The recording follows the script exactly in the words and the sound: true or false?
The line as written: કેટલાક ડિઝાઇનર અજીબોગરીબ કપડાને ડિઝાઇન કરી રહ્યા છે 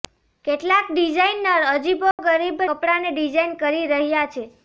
false